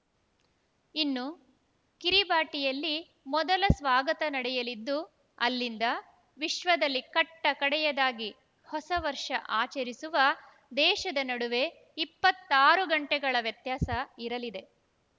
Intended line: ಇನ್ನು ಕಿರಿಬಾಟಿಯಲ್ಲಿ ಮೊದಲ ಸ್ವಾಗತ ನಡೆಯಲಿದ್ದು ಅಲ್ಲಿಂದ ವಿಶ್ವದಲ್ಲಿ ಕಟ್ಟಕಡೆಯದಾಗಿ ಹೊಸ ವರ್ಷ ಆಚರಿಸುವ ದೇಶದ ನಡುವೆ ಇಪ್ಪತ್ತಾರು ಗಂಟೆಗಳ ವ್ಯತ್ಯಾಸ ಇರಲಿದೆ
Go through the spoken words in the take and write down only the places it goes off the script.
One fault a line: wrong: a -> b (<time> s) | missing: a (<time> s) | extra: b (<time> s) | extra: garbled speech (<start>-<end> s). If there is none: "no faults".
no faults